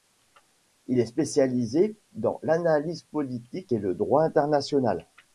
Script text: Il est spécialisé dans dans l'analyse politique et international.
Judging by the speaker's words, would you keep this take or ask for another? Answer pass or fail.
fail